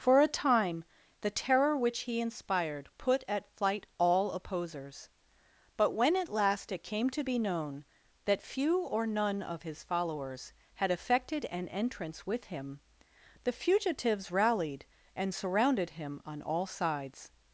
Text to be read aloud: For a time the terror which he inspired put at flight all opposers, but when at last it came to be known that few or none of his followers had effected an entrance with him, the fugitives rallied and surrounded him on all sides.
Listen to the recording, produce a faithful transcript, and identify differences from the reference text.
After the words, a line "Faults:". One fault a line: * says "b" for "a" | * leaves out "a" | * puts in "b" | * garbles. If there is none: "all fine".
For a time the terror which he inspired put at flight all opposers, but when at last it came to be known that few or none of his followers had effected an entrance with him, the fugitives rallied and surrounded him on all sides.
Faults:
all fine